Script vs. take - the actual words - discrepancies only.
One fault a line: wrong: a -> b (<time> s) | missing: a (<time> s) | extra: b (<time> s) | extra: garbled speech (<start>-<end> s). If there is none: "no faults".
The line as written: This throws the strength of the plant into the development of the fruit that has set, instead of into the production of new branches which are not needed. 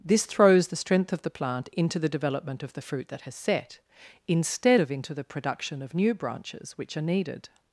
missing: not (7.0 s)